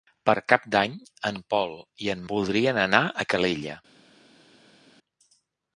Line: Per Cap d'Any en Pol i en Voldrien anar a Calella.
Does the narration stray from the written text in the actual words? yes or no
no